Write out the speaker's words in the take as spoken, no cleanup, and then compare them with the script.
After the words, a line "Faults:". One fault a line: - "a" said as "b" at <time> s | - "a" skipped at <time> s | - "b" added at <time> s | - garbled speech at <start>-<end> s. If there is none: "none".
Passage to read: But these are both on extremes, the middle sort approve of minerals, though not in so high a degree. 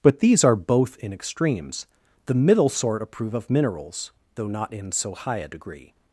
But these are both in extremes, the middle sort approve of minerals, though not in so high a degree.
Faults:
- "on" said as "in" at 1.0 s